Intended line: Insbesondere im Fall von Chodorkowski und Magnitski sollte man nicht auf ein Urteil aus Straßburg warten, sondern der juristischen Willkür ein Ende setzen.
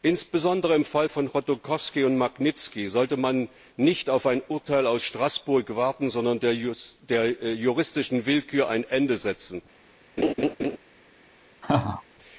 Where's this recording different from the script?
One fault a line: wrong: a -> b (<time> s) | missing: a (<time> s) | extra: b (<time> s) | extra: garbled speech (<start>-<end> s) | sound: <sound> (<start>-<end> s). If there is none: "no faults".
sound: laugh (10.2-10.8 s)
sound: laugh (11.6-12.0 s)